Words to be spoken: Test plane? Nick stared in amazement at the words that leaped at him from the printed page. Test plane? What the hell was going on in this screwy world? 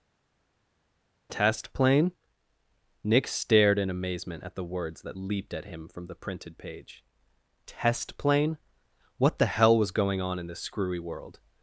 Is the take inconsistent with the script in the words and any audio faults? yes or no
no